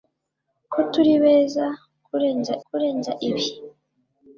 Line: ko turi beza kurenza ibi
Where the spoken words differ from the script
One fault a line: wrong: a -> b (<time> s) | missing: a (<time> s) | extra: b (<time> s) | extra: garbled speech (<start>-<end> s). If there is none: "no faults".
extra: kurenza (2.7 s)